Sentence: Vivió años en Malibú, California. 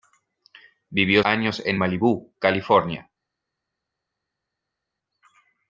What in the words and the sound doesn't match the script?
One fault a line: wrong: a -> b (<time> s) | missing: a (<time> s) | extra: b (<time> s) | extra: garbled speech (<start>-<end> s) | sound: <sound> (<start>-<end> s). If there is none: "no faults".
no faults